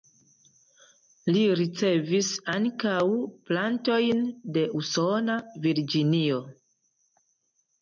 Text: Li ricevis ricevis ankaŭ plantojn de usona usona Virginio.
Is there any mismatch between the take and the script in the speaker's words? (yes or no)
yes